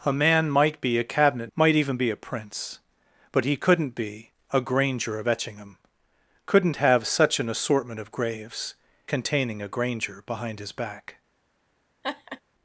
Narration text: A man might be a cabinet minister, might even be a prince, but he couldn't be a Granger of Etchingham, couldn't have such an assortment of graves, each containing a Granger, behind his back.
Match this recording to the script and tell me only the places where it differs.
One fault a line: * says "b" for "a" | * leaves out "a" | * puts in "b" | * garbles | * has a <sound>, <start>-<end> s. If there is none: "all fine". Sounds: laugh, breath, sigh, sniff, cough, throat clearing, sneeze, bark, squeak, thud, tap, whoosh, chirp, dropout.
* leaves out "minister"
* leaves out "each"
* has a laugh, 12.0-12.4 s